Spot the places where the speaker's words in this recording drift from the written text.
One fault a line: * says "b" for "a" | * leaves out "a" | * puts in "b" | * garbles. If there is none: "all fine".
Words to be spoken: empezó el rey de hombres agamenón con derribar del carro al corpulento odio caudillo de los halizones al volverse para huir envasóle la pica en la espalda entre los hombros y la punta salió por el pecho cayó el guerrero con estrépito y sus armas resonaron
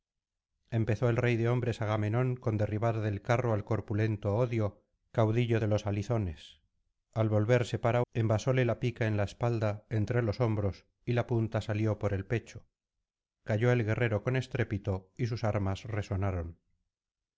* leaves out "huir"